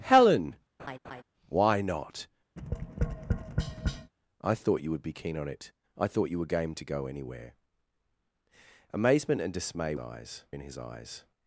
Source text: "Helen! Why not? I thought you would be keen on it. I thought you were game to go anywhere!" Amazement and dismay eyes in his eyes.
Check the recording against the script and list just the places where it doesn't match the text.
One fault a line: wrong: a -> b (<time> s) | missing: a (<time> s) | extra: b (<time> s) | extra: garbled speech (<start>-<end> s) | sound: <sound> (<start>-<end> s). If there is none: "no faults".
sound: laugh (0.8-1.2 s)
sound: tap (2.6-4.1 s)